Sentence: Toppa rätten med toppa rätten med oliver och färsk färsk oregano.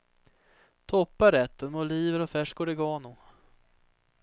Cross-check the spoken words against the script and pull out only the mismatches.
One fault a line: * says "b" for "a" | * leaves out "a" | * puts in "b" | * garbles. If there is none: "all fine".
* leaves out "toppa rätten med"
* leaves out "färsk"